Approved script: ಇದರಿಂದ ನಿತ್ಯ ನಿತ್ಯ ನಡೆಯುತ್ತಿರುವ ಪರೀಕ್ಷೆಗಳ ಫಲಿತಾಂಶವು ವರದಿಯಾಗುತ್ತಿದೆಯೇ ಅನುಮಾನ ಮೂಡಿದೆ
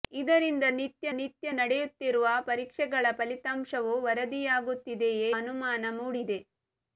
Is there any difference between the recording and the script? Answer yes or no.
no